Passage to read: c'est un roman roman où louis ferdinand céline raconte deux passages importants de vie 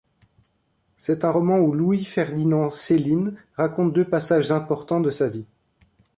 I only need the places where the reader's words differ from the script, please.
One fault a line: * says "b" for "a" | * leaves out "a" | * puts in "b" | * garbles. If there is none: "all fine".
* leaves out "roman"
* puts in "sa"